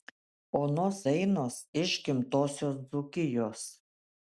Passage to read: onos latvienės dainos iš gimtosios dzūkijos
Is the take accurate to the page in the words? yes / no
no